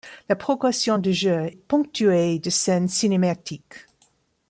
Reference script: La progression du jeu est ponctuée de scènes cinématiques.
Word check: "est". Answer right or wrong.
wrong